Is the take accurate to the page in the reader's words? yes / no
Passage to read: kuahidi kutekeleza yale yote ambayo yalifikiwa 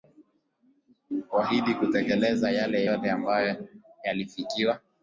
yes